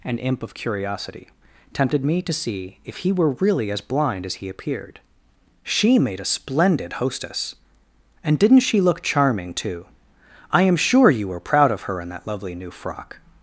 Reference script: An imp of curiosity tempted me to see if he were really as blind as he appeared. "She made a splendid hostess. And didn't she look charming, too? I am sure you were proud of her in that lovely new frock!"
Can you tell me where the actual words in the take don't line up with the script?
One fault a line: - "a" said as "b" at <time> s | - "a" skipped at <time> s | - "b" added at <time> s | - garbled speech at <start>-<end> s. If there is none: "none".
none